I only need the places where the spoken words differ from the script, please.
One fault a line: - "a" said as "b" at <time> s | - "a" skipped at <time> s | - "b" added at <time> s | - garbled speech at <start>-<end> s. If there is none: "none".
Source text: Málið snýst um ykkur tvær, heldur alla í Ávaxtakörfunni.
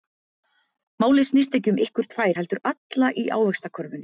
- "ekki" added at 1.6 s